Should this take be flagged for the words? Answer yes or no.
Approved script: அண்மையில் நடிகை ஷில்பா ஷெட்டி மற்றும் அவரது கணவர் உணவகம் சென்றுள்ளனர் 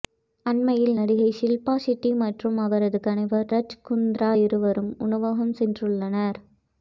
yes